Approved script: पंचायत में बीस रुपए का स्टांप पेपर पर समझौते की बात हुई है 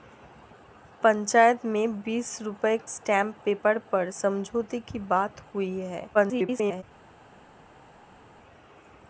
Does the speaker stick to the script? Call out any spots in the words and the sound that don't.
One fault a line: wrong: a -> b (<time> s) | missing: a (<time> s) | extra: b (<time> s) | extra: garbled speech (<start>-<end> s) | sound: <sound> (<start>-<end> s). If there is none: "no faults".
missing: का (2.8 s)
extra: garbled speech (6.1-6.8 s)